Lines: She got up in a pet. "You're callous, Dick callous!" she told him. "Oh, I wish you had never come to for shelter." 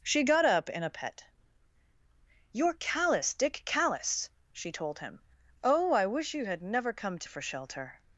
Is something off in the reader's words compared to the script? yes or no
no